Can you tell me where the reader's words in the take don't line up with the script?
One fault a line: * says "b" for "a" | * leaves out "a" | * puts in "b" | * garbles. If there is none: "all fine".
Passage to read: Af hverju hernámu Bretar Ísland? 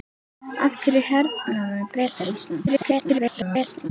* garbles